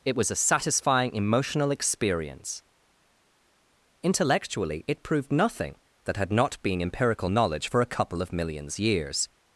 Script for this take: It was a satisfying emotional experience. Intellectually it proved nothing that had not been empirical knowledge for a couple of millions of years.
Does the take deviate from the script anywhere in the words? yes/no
yes